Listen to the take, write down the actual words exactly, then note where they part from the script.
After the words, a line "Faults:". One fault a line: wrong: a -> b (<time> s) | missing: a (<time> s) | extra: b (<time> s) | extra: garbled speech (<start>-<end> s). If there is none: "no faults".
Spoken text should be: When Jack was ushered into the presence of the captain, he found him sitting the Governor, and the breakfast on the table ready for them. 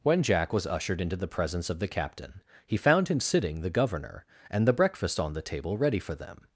When Jack was ushered into the presence of the captain, he found him sitting the Governor, and the breakfast on the table ready for them.
Faults:
no faults